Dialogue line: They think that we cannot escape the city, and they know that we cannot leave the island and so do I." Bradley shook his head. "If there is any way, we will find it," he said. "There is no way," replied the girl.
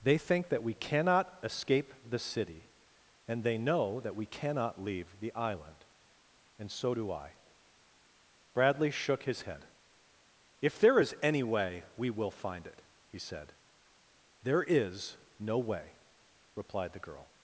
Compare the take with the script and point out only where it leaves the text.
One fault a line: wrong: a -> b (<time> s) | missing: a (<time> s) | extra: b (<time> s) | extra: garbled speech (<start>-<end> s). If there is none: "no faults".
no faults